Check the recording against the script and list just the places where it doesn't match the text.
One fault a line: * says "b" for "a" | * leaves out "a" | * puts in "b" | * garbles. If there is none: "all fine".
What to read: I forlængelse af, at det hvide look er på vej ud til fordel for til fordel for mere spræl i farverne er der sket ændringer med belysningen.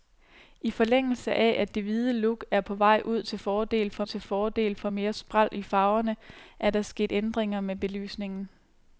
all fine